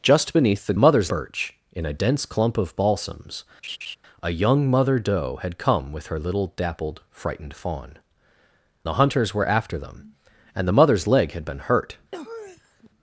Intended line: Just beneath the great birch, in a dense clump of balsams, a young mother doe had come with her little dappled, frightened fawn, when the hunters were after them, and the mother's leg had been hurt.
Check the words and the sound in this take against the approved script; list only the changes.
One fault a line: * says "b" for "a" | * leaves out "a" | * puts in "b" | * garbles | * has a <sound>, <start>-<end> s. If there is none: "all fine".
* says "mother's" for "great"
* has a laugh, 3.6-4.0 s
* leaves out "when"
* has a sniff, 12.1-12.9 s